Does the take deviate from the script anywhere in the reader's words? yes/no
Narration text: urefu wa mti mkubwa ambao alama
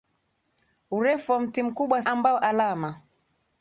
no